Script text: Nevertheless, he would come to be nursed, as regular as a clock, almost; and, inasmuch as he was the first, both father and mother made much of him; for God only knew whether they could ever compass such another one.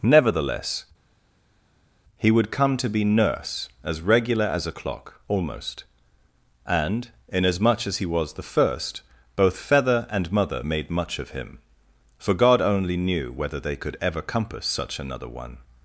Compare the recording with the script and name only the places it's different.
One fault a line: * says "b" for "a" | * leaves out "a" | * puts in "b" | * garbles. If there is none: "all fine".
* says "nurse" for "nursed"
* says "feather" for "father"